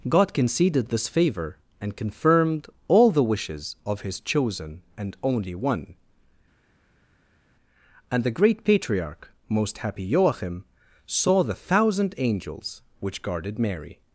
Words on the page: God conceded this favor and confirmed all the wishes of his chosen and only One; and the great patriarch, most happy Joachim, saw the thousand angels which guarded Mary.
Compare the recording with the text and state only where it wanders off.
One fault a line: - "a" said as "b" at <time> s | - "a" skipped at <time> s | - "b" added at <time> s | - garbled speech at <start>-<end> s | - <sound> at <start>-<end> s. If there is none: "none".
none